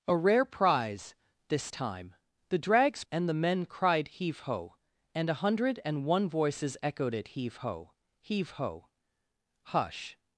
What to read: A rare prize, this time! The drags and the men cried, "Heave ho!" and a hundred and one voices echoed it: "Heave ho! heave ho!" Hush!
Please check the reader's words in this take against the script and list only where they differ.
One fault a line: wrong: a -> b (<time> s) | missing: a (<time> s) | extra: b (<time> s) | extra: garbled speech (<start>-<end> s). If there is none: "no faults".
no faults